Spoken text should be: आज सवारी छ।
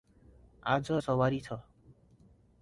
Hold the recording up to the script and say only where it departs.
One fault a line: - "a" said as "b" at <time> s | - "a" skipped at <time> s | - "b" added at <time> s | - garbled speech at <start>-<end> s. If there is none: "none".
none